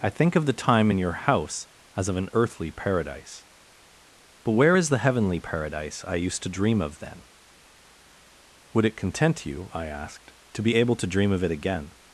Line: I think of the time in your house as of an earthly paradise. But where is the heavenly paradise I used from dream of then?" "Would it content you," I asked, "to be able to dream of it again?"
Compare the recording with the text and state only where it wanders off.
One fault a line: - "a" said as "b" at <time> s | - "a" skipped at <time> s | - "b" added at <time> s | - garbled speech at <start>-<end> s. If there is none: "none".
- "from" said as "to" at 6.4 s